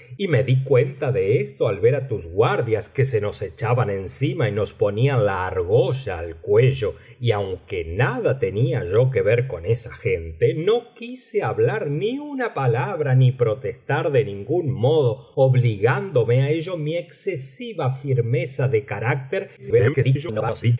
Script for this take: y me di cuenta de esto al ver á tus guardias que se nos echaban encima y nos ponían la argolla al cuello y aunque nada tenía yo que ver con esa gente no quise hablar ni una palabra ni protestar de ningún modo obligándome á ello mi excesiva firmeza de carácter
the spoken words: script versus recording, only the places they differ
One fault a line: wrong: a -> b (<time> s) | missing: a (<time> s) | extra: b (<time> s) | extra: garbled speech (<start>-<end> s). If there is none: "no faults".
extra: garbled speech (19.6-20.8 s)